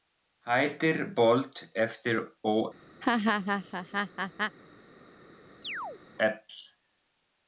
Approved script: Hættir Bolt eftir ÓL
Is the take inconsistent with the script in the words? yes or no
no